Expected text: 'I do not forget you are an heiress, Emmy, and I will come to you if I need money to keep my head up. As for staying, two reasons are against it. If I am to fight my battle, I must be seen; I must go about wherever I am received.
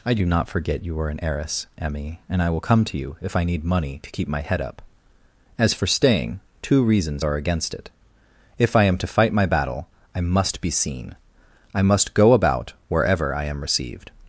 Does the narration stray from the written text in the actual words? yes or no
no